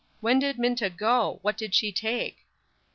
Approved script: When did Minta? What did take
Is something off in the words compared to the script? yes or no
yes